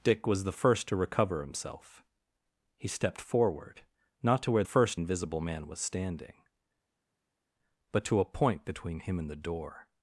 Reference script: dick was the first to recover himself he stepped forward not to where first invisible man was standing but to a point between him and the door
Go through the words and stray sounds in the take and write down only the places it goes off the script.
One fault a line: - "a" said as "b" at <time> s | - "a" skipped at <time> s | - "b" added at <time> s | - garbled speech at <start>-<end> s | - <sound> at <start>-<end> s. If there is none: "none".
none